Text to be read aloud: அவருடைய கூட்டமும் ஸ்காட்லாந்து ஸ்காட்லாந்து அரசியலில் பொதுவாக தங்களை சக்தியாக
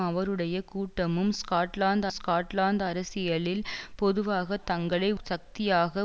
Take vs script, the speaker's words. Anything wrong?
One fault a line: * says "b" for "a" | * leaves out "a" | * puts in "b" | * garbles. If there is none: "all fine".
all fine